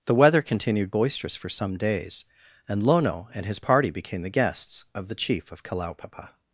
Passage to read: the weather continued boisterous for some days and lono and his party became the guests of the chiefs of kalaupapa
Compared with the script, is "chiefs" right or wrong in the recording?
wrong